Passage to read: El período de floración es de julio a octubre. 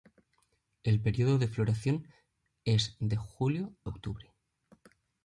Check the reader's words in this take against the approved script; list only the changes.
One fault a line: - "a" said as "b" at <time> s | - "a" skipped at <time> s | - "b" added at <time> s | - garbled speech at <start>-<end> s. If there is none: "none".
- "a" skipped at 3.8 s